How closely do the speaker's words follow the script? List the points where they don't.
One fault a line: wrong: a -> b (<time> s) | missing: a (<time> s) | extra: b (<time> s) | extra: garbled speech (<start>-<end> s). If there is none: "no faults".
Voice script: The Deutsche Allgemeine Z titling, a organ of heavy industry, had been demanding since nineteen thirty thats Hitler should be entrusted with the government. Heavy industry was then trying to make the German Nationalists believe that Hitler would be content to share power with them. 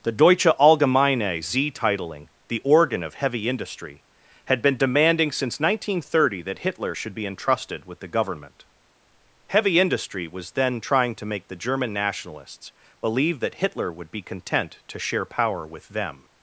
wrong: a -> the (2.5 s)
wrong: thats -> that (6.4 s)